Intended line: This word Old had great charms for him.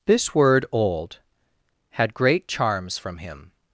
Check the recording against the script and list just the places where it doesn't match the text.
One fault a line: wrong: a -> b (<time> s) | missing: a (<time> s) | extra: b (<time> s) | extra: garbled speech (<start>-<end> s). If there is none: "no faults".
wrong: for -> from (3.0 s)